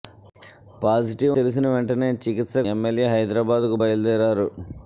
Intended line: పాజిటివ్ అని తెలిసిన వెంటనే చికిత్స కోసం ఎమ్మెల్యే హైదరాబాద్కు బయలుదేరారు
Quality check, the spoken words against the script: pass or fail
fail